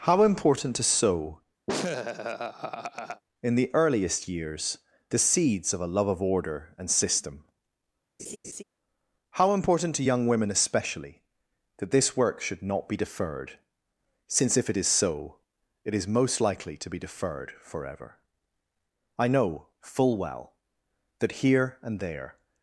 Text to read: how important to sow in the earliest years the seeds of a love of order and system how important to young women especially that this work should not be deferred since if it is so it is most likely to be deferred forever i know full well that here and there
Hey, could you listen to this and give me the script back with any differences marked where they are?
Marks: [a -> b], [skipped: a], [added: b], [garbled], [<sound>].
how important to sow [laugh] in the earliest years the seeds of a love of order and system [laugh] how important to young women especially that this work should not be deferred since if it is so it is most likely to be deferred forever i know full well that here and there